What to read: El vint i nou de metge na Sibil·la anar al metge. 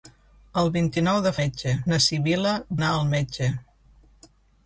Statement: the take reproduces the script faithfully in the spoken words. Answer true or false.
true